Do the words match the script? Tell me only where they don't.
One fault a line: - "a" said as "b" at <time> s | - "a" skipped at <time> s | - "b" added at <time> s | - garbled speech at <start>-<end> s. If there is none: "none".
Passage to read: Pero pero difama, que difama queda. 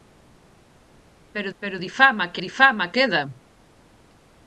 none